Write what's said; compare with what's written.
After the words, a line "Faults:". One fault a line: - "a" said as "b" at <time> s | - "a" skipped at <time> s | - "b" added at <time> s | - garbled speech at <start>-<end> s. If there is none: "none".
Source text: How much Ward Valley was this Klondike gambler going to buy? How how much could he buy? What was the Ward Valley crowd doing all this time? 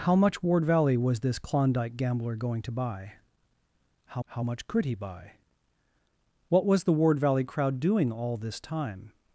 How much Ward Valley was this Klondike gambler going to buy? How how much could he buy? What was the Ward Valley crowd doing all this time?
Faults:
none